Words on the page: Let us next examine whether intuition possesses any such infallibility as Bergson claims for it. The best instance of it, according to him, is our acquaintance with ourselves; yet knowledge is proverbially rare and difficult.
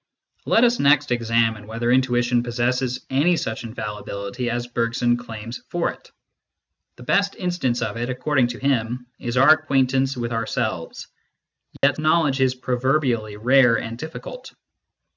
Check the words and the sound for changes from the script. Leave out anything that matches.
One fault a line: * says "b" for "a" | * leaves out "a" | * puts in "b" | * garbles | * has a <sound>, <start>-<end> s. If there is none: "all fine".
* has a dropout, 11.8-11.8 s